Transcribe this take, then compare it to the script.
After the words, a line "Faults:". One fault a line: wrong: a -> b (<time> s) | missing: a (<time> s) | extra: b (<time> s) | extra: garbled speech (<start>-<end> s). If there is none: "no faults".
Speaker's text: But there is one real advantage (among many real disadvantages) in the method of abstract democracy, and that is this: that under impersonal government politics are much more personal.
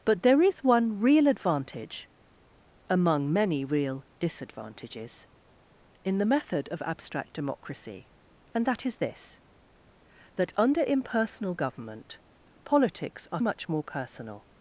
But there is one real advantage (among many real disadvantages) in the method of abstract democracy, and that is this: that under impersonal government politics are much more personal.
Faults:
no faults